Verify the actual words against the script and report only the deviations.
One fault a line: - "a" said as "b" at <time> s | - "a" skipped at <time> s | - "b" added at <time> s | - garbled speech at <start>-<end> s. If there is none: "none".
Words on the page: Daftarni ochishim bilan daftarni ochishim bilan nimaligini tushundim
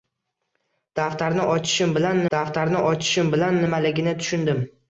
none